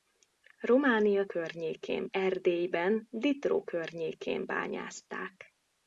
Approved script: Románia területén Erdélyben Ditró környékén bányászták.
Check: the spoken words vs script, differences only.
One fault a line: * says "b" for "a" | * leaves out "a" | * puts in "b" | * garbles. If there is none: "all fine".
* says "környékén" for "területén"